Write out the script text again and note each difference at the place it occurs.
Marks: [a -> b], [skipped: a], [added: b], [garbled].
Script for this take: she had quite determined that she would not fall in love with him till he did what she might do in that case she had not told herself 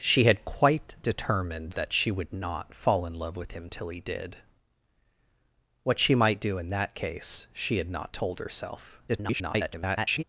she had quite determined that she would not fall in love with him till he did what she might do in that case she had not told herself [garbled]